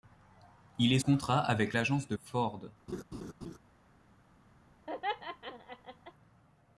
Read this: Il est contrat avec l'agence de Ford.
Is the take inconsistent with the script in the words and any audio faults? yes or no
yes